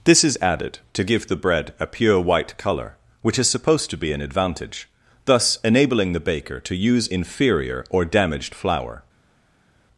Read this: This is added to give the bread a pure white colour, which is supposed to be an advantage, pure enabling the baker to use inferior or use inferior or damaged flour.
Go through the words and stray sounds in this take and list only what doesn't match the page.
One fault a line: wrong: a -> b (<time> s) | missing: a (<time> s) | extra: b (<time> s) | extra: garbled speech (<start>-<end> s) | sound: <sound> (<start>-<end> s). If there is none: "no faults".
wrong: pure -> thus (5.2 s)
missing: use inferior or (8.0 s)